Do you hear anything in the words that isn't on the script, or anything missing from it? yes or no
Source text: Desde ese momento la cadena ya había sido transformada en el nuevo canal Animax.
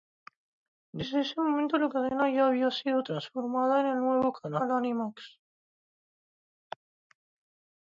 no